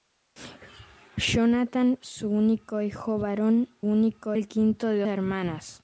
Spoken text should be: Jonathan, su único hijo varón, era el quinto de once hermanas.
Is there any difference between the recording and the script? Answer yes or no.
yes